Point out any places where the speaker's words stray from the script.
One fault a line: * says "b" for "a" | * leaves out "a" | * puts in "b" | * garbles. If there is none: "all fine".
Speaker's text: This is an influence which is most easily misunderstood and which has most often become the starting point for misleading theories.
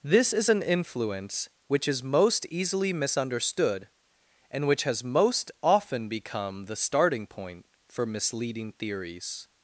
all fine